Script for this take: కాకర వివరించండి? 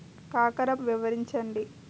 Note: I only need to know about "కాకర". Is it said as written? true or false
true